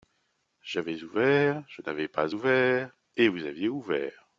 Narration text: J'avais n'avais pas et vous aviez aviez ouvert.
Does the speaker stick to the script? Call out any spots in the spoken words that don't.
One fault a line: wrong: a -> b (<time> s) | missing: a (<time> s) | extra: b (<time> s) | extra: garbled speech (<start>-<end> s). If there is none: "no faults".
extra: ouvert je (1.0 s)
extra: ouvert (2.3 s)
missing: aviez (3.7 s)